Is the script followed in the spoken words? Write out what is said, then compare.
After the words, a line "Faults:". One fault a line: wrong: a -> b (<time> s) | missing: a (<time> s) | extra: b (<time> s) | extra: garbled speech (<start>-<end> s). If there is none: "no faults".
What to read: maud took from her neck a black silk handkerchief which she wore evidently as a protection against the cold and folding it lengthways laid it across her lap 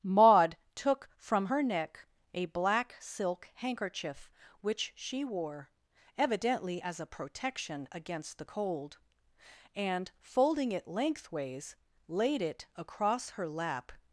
maud took from her neck a black silk handkerchief which she wore evidently as a protection against the cold and folding it lengthways laid it across her lap
Faults:
no faults